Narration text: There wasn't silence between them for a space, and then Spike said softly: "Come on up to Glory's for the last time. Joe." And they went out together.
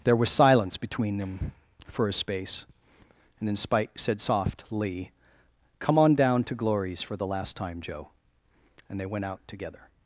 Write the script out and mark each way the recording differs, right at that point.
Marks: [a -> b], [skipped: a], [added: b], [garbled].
There [wasn't -> was] silence between them for a space, and then Spike said softly: "Come on [up -> down] to Glory's for the last time. Joe." And they went out together.